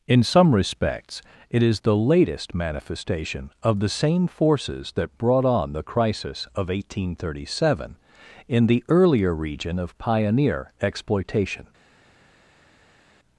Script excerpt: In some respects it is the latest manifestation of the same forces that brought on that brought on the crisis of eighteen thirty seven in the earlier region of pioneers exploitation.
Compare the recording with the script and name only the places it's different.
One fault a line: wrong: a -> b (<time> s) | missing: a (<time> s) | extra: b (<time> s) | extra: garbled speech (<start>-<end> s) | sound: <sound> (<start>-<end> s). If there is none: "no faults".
missing: that brought on (5.7 s)
wrong: pioneers -> pioneer (10.0 s)